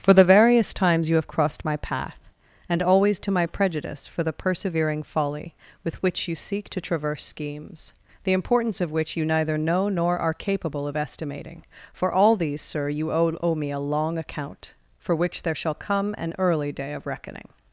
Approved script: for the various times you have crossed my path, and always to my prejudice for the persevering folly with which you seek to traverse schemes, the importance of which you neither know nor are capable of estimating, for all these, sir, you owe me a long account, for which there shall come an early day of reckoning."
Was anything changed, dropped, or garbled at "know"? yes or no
no